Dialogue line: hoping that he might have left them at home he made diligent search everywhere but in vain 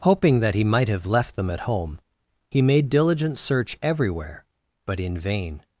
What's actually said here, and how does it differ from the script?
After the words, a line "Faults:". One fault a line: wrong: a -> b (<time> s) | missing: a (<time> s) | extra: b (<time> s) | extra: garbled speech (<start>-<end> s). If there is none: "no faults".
hoping that he might have left them at home he made diligent search everywhere but in vain
Faults:
no faults